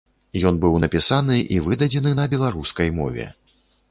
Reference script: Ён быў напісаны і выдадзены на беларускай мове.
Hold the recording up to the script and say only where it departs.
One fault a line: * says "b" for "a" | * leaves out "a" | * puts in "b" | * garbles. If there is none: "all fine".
all fine